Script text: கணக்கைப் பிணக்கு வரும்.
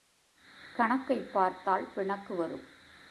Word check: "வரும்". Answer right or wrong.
right